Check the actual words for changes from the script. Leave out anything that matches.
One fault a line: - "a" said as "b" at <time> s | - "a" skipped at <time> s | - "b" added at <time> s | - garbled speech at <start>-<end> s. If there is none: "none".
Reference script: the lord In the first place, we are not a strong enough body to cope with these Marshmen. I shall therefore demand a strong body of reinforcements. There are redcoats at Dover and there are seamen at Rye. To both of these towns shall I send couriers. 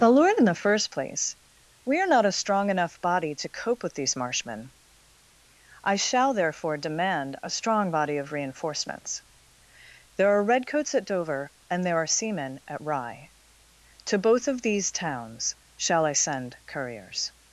none